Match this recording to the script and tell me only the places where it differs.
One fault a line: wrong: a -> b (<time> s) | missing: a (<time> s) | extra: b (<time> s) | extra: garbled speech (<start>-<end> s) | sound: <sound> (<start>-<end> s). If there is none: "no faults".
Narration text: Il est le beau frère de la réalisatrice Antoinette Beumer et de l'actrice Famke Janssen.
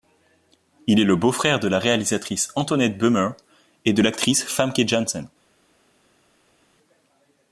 no faults